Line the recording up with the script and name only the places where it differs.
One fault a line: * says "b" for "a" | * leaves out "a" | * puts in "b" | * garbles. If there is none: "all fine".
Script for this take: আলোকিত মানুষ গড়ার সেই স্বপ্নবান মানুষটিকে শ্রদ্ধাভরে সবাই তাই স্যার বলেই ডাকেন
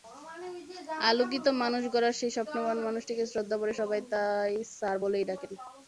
all fine